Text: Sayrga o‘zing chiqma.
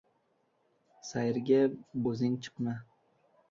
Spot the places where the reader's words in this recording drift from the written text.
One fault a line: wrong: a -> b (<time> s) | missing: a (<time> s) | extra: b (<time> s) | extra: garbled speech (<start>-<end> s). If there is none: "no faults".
no faults